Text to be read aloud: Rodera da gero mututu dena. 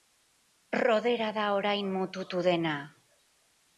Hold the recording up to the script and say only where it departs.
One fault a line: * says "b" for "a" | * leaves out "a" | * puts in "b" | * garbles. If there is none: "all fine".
* says "orain" for "gero"